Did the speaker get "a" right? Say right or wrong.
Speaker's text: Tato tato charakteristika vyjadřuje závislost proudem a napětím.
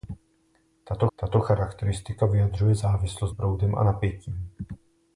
right